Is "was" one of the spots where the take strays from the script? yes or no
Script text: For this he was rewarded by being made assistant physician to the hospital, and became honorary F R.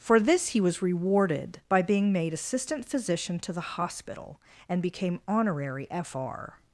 no